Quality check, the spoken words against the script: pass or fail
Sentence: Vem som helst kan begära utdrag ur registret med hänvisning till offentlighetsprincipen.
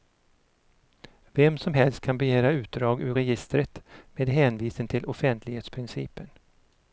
pass